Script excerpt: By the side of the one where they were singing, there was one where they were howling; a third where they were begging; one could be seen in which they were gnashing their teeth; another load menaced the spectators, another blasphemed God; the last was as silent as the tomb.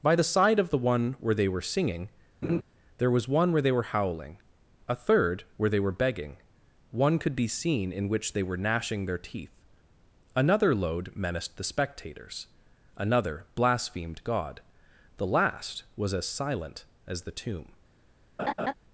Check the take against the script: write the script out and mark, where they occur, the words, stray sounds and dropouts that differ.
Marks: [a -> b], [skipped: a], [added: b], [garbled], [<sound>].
By the side of the one where they were singing, [laugh] there was one where they were howling; a third where they were begging; one could be seen in which they were gnashing their teeth; another load menaced the spectators, another blasphemed God; the last was as silent as the tomb. [laugh]